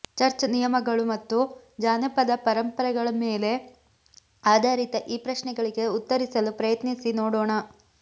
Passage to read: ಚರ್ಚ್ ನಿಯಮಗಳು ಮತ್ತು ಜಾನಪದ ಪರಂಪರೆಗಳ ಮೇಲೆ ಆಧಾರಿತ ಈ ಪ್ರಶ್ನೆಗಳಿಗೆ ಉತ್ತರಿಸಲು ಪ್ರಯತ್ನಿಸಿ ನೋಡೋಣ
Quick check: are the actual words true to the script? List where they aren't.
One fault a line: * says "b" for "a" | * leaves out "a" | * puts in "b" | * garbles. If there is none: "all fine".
all fine